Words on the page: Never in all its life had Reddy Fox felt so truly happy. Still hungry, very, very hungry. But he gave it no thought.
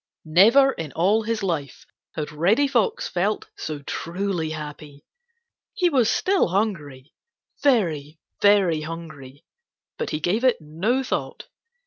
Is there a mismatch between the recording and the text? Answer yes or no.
yes